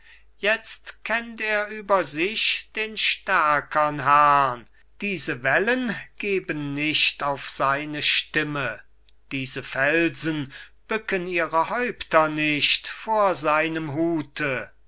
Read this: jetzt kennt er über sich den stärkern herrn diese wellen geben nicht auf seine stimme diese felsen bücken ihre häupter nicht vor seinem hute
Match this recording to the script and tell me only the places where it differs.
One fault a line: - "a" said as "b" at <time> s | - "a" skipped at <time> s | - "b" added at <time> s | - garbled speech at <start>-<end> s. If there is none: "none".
none